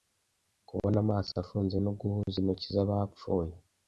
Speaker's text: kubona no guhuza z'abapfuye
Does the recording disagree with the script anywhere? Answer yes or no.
yes